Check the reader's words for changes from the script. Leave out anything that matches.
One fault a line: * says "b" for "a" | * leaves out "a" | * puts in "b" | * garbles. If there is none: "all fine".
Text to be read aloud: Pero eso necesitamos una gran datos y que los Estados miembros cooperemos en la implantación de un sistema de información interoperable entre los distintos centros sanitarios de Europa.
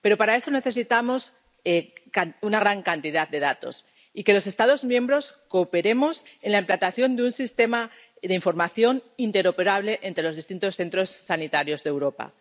* puts in "para"
* puts in "cantidad de"